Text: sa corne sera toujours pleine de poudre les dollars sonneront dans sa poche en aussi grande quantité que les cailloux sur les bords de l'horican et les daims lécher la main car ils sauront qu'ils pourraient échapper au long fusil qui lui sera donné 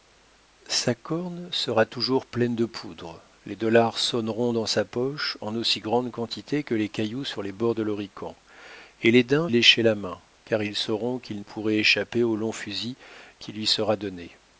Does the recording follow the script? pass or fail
pass